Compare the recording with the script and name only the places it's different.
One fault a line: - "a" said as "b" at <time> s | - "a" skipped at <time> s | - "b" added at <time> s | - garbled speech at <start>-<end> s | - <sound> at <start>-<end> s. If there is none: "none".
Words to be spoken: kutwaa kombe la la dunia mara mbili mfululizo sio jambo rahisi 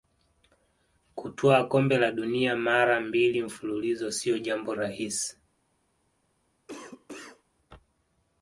- "la" skipped at 2.1 s
- cough at 6.7-7.4 s